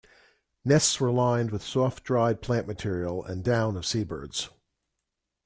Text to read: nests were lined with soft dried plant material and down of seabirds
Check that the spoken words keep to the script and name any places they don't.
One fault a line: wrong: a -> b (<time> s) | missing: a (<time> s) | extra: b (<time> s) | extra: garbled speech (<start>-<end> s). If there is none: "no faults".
no faults